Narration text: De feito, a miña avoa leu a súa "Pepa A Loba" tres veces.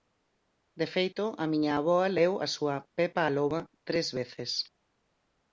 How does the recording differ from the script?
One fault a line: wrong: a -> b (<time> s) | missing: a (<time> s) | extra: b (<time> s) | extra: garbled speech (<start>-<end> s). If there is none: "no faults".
no faults